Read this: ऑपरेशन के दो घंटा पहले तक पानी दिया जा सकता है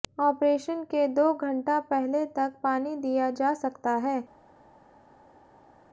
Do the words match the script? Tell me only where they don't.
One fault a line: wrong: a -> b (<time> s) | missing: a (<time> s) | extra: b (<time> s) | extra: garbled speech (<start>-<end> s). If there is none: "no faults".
no faults